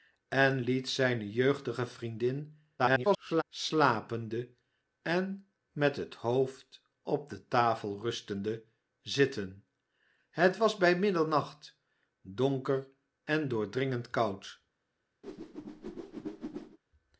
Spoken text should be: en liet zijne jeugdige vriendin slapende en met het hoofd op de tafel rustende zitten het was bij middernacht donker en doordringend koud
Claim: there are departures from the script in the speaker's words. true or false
true